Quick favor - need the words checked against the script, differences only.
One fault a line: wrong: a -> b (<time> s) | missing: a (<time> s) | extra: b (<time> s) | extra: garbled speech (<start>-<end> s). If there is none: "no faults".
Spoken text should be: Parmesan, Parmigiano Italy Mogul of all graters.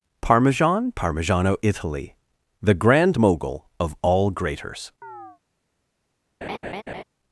extra: The grand (2.6 s)